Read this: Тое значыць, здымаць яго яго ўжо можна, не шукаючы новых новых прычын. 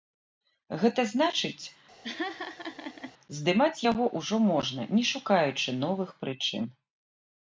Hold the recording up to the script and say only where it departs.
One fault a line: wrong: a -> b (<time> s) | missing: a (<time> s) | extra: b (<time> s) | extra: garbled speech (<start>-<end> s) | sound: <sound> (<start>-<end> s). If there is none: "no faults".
wrong: Тое -> Гэта (0.8 s)
sound: laugh (2.0-3.1 s)
missing: яго (4.0 s)
missing: новых (6.1 s)